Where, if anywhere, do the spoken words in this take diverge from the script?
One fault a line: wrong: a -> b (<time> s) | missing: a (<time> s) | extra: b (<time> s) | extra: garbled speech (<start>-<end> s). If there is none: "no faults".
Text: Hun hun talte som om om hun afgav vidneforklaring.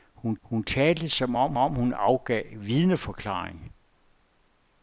no faults